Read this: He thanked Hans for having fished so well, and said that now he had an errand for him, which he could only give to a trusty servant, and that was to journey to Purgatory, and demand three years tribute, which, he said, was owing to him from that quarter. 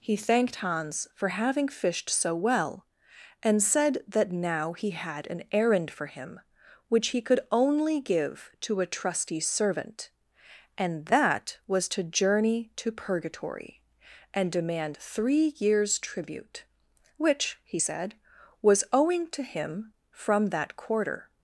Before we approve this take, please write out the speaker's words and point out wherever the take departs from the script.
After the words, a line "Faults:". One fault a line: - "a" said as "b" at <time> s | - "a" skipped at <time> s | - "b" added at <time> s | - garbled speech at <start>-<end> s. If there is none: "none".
He thanked Hans for having fished so well, and said that now he had an errand for him, which he could only give to a trusty servant, and that was to journey to Purgatory, and demand three years tribute, which, he said, was owing to him from that quarter.
Faults:
none